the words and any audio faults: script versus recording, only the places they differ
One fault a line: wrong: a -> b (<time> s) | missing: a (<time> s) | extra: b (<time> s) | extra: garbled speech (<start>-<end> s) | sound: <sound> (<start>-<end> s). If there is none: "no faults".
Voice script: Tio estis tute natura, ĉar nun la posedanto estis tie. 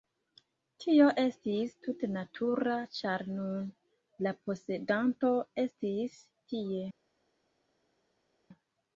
no faults